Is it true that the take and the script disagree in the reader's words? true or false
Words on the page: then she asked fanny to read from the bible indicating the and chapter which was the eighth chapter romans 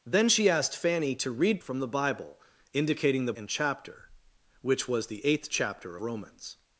false